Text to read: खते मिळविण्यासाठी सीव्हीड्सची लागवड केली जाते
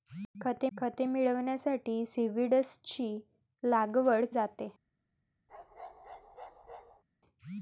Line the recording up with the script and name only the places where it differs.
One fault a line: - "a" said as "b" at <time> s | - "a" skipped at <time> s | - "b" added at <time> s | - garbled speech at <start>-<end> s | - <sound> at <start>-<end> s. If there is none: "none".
- "खते" added at 0.8 s
- "केली" skipped at 4.3 s
- bark at 5.5-7.0 s